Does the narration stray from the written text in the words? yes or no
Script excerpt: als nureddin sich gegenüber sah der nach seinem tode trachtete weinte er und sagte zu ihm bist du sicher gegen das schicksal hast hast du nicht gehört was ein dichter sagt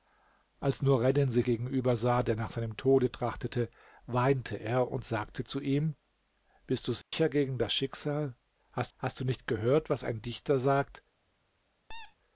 no